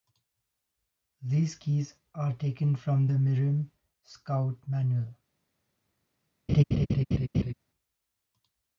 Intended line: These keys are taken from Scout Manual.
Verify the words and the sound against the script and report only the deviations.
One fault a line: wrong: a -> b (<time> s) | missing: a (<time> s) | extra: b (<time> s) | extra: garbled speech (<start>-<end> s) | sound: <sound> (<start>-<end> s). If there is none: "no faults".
extra: the Mirim (3.0 s)
sound: laugh (6.5-7.5 s)